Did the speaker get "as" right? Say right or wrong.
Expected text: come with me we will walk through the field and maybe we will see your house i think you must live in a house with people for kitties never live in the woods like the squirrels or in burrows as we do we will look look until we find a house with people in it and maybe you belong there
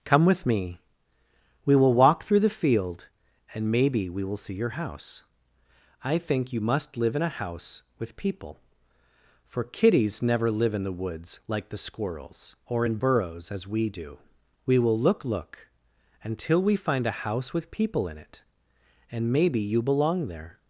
right